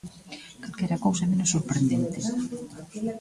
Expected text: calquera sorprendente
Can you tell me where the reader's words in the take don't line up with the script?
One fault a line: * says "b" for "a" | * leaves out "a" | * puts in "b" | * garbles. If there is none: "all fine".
* puts in "cousa menos"